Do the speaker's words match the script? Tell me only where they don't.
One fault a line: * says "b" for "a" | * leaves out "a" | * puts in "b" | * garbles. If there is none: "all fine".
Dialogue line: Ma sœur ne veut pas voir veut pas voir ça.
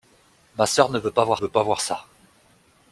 all fine